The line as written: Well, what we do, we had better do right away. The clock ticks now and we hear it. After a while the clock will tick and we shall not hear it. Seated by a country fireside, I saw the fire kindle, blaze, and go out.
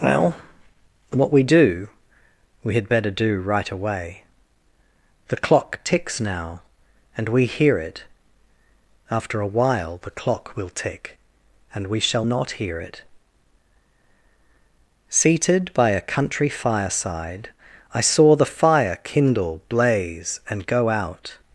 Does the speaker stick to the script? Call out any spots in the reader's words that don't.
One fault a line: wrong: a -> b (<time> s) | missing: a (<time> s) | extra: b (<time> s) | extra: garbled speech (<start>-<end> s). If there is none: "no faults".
no faults